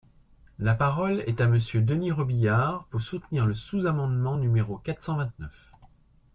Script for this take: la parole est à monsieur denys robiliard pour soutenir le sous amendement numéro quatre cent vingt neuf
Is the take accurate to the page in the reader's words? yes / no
yes